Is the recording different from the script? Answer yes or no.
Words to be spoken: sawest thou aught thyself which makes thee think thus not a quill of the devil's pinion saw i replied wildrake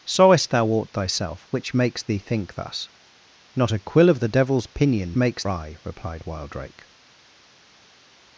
yes